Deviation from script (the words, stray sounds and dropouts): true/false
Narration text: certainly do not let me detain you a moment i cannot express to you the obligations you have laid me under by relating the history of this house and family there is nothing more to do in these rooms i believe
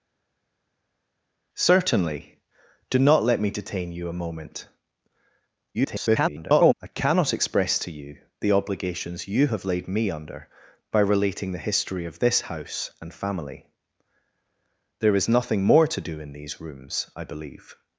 true